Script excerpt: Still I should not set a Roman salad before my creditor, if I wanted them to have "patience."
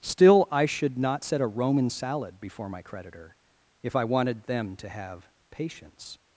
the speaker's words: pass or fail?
pass